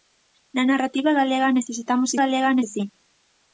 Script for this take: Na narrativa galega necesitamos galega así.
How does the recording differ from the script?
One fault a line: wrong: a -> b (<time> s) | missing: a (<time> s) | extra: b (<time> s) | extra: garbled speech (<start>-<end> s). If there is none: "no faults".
no faults